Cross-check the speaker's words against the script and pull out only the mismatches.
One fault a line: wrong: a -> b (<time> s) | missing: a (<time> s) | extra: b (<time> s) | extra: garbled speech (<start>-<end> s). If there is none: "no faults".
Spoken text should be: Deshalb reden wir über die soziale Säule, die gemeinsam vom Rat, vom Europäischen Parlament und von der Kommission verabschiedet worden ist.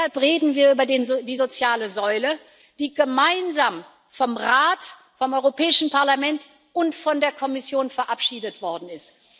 no faults